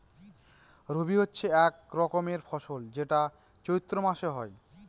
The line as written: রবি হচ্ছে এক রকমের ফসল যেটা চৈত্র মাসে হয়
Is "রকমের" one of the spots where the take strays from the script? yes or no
no